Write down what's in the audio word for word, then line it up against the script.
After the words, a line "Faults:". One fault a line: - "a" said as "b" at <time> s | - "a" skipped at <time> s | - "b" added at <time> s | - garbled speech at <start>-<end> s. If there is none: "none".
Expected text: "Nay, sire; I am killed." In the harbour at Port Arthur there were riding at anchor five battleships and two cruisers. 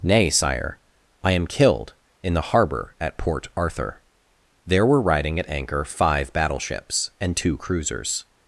"Nay, sire; I am killed." In the harbour at Port Arthur there were riding at anchor five battleships and two cruisers.
Faults:
none